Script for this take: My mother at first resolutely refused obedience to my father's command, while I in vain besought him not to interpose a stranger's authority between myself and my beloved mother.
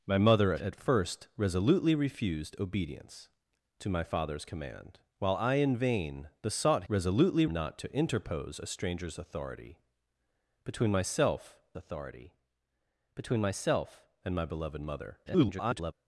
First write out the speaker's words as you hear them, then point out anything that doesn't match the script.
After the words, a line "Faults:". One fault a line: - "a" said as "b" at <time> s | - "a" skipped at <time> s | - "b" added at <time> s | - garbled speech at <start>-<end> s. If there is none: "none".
My mother at first resolutely refused obedience to my father's command, while I in vain besought resolutely not to interpose a stranger's authority between myself authority between myself and my beloved mother. [garbled]
Faults:
- "him" said as "resolutely" at 6.9 s
- "authority between myself" added at 11.7 s
- garbled speech at 15.3-15.9 s